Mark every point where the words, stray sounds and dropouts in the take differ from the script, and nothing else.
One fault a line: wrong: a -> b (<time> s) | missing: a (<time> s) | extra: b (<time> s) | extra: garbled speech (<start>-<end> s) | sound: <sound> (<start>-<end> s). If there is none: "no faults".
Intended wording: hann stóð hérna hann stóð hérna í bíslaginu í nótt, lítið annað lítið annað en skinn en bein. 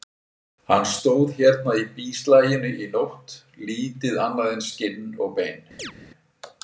missing: hann stóð hérna (1.8 s)
missing: lítið annað (4.5 s)
wrong: en -> og (5.3 s)
sound: chirp (5.8-5.9 s)